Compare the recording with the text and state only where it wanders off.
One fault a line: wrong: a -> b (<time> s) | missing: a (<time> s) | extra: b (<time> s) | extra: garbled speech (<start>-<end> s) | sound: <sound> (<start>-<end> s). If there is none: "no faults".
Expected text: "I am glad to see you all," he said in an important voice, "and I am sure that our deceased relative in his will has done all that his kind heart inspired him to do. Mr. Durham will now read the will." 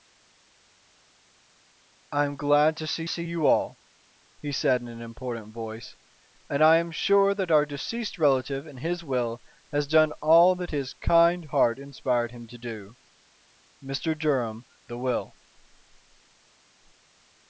extra: see (3.1 s)
missing: will now read (14.7 s)